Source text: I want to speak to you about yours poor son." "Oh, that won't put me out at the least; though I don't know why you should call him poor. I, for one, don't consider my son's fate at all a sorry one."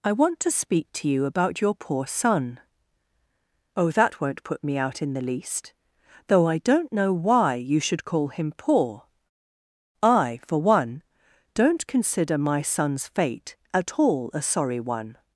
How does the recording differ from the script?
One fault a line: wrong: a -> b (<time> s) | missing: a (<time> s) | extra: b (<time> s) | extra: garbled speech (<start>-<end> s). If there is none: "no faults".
wrong: yours -> your (1.6 s)
wrong: at -> in (5.0 s)